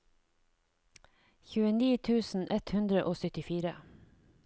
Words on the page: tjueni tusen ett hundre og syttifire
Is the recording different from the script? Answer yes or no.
no